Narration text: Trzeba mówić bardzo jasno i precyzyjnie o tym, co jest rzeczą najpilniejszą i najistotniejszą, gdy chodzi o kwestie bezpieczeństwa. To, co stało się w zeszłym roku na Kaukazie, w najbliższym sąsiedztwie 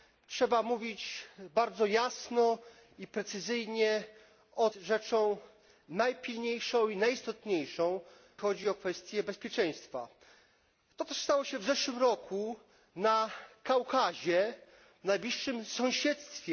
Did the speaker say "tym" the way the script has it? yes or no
no